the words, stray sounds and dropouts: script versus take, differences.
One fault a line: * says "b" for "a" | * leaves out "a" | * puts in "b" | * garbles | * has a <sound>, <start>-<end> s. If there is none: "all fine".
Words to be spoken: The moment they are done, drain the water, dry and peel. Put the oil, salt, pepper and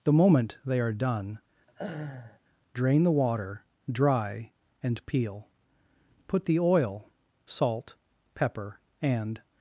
* has a laugh, 1.7-2.4 s